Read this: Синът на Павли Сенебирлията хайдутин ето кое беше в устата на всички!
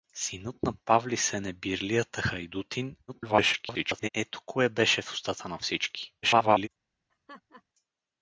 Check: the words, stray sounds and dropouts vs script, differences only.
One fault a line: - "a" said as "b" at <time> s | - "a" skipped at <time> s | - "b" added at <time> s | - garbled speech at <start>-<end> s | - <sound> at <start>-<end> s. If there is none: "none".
- garbled speech at 3.1-4.1 s
- garbled speech at 6.2-6.7 s
- laugh at 7.1-7.6 s